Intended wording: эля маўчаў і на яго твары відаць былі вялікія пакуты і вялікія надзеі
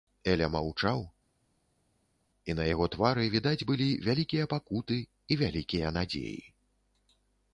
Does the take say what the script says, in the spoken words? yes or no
yes